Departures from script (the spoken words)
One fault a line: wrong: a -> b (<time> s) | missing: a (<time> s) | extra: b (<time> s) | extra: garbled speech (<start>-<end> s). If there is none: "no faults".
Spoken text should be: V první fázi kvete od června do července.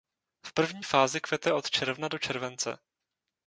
no faults